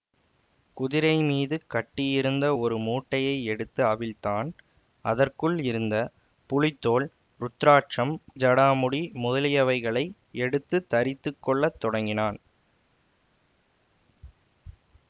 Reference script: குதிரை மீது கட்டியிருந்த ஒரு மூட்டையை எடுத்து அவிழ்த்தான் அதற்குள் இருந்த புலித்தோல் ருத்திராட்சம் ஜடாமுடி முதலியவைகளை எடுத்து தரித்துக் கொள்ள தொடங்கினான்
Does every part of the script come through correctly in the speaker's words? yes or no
yes